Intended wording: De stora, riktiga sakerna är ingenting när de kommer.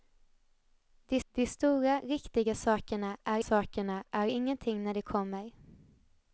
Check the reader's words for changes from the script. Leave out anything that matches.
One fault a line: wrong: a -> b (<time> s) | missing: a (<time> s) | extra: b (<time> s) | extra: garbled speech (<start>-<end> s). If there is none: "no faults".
extra: de (1.3 s)
extra: sakerna är (3.4 s)